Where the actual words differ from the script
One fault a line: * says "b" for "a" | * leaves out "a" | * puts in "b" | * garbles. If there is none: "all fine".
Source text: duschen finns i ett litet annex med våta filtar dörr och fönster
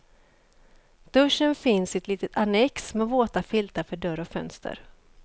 * puts in "för"